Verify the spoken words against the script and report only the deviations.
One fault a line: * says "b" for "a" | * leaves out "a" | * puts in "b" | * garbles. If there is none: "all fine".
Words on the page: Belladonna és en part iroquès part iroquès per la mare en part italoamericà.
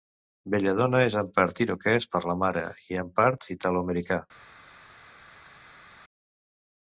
* leaves out "part iroquès"
* puts in "i"